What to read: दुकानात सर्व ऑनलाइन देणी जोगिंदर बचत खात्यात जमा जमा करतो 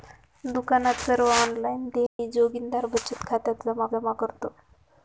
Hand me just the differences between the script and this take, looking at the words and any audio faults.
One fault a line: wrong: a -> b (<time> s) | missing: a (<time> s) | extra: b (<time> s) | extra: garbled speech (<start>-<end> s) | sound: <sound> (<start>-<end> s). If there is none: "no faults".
sound: dropout (2.1-2.2 s)